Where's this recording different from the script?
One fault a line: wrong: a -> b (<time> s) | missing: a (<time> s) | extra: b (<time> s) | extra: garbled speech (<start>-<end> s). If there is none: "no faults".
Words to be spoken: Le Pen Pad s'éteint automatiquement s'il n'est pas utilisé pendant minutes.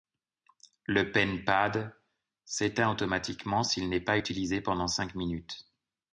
extra: cinq (4.9 s)